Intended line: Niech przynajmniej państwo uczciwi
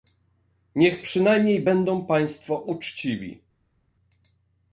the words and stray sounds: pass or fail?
fail